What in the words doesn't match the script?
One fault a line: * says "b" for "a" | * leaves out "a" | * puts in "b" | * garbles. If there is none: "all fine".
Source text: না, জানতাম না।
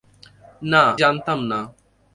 all fine